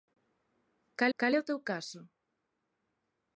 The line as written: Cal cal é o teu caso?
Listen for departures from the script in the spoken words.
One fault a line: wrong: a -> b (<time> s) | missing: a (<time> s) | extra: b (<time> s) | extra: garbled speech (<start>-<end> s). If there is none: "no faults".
no faults